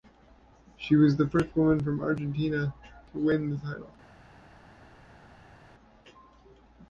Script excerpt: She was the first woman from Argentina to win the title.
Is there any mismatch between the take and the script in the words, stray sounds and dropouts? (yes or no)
no